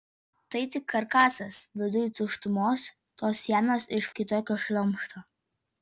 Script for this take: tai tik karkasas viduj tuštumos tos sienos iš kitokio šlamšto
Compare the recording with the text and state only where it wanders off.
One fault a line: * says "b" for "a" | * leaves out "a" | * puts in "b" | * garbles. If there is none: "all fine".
all fine